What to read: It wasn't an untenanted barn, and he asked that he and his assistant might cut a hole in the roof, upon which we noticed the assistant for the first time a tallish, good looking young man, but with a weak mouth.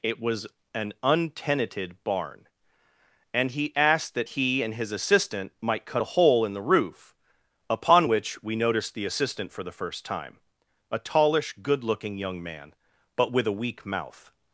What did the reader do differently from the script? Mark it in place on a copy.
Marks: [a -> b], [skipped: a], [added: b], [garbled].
It [wasn't -> was] an untenanted barn, and he asked that he and his assistant might cut a hole in the roof, upon which we noticed the assistant for the first time a tallish, good looking young man, but with a weak mouth.